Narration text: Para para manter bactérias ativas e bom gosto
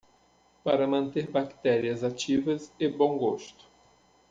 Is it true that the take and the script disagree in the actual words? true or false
true